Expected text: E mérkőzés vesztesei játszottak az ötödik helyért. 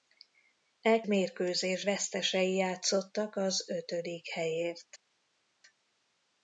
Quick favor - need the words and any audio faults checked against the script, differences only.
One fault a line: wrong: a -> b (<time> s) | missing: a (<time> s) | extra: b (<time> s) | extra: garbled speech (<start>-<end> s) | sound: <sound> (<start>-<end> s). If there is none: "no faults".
no faults